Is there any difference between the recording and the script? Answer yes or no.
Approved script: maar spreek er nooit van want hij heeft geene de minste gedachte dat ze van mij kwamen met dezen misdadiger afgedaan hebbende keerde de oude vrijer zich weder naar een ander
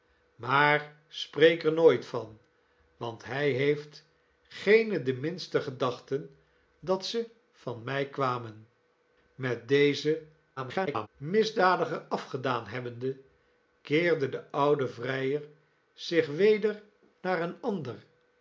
yes